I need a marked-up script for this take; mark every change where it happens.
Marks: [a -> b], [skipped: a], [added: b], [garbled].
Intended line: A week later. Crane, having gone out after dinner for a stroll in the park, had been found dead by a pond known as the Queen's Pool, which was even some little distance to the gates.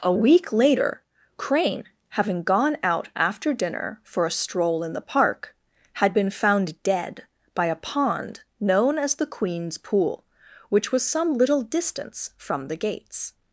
A week later. Crane, having gone out after dinner for a stroll in the park, had been found dead by a pond known as the Queen's Pool, which was [skipped: even] some little distance [to -> from] the gates.